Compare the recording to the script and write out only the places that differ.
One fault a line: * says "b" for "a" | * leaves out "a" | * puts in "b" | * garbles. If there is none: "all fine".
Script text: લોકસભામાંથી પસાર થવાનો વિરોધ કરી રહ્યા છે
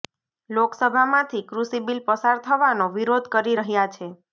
* puts in "કૃષિ બિલ"